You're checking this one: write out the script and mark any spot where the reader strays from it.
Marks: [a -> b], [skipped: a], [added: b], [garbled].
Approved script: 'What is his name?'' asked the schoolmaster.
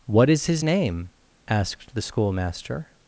'What is his name?'' asked the schoolmaster.